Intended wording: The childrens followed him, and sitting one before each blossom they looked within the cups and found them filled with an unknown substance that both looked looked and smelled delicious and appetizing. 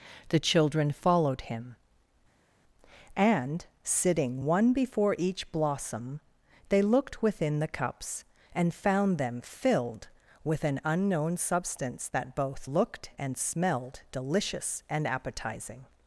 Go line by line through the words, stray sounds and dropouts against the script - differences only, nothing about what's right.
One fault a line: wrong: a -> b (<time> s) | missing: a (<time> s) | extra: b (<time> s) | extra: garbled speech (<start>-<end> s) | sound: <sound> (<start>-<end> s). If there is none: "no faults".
wrong: childrens -> children (0.4 s)
missing: looked (13.1 s)